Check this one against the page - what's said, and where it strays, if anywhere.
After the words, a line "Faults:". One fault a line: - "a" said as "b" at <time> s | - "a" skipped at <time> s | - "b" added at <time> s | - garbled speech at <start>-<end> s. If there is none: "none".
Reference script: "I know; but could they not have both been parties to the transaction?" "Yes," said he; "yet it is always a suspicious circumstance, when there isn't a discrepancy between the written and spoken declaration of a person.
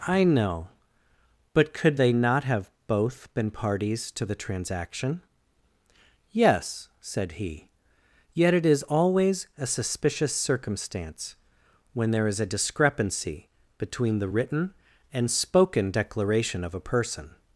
"I know; but could they not have both been parties to the transaction?" "Yes," said he; "yet it is always a suspicious circumstance, when there is a discrepancy between the written and spoken declaration of a person.
Faults:
- "isn't" said as "is" at 12.3 s